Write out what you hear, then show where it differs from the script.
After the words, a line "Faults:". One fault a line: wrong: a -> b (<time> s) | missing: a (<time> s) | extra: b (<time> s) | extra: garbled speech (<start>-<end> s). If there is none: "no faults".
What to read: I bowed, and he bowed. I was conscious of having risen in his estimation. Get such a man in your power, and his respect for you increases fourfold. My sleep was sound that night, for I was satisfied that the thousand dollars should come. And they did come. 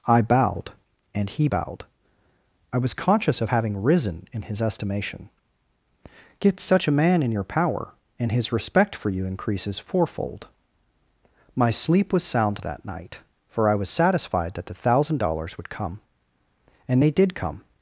I bowed, and he bowed. I was conscious of having risen in his estimation. Get such a man in your power, and his respect for you increases fourfold. My sleep was sound that night, for I was satisfied that the thousand dollars would come. And they did come.
Faults:
wrong: should -> would (15.6 s)